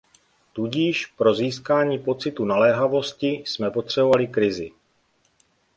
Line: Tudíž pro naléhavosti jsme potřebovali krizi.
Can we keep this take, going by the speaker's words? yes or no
no